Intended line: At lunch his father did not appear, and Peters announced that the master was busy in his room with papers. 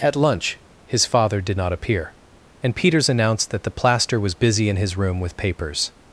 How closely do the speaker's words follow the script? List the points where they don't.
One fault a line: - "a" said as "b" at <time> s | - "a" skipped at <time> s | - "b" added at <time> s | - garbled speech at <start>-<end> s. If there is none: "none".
- "master" said as "plaster" at 3.7 s